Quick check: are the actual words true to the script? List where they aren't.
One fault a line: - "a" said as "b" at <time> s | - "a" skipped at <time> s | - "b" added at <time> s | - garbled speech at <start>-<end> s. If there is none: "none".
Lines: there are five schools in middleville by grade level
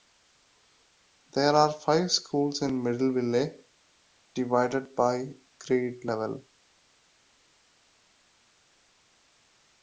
- "divided" added at 4.3 s